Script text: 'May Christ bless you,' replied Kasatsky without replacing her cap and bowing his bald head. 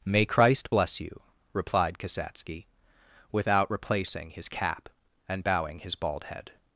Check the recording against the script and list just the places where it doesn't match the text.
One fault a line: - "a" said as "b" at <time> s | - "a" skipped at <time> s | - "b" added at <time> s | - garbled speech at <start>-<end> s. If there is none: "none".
- "her" said as "his" at 4.3 s